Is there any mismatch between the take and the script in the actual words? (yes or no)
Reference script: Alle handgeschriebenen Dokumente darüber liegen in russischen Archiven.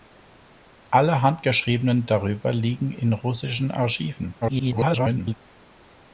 yes